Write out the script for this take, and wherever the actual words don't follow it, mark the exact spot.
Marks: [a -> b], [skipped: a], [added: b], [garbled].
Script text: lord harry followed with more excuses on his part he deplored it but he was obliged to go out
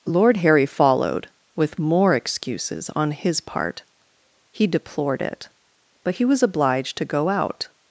lord harry followed with more excuses on his part he deplored it but he was obliged to go out